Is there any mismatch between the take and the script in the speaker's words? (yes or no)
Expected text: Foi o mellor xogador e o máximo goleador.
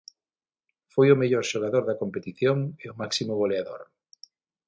yes